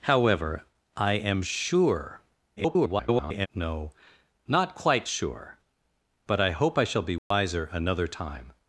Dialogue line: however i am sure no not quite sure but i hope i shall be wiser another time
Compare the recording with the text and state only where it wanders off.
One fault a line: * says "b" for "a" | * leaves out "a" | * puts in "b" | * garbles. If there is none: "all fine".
* garbles